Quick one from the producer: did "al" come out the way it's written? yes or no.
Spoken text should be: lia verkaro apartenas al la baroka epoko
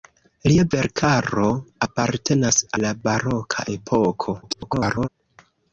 no